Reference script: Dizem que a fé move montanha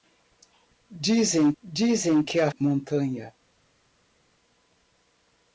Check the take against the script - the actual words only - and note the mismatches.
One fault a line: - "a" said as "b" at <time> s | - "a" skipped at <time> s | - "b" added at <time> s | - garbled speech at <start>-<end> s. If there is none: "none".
- "dizem" added at 1.6 s
- "fé move" skipped at 2.5 s